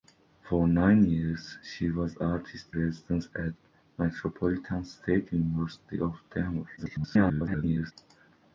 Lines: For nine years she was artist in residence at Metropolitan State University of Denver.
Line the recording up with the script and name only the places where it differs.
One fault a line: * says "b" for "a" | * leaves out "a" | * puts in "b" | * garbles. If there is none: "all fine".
* leaves out "in"
* garbles